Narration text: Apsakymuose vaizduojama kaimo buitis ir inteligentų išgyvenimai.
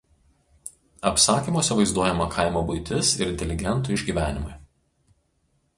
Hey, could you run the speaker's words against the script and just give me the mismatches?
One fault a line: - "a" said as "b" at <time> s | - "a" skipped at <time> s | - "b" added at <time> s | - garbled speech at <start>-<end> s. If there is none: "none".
none